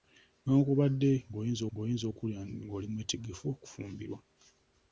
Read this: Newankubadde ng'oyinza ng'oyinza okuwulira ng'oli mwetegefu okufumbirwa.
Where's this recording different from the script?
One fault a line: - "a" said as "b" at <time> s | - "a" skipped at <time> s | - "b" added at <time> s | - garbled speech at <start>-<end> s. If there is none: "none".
none